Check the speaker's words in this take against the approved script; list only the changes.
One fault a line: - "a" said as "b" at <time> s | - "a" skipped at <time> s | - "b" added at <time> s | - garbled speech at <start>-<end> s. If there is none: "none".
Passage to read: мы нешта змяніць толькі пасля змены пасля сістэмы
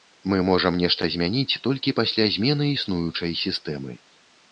- "можам" added at 0.5 s
- "пасля" said as "існуючай" at 2.8 s